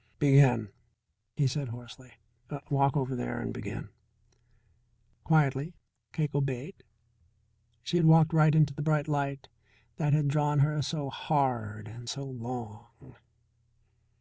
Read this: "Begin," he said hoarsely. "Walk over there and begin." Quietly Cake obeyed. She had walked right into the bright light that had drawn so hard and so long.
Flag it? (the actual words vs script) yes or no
yes